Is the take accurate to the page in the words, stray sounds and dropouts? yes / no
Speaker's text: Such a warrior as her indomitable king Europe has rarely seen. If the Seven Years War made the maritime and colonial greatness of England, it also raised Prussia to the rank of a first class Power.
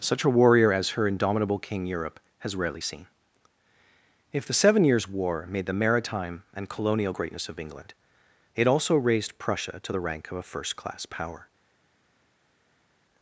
yes